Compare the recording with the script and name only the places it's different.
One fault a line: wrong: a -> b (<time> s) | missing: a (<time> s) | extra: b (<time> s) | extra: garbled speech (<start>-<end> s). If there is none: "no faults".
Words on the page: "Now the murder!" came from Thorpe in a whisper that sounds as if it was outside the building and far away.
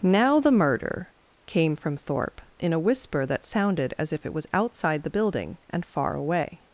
wrong: sounds -> sounded (3.5 s)